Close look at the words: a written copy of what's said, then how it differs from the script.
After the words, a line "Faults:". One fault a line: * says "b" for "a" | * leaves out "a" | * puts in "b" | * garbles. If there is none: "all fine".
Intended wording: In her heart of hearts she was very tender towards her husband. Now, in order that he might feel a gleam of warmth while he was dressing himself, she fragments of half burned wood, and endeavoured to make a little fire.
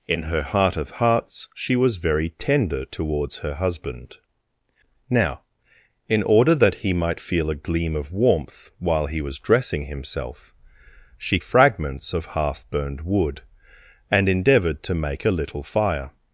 In her heart of hearts she was very tender towards her husband. Now, in order that he might feel a gleam of warmth while he was dressing himself, she fragments of half burned wood, and endeavoured to make a little fire.
Faults:
all fine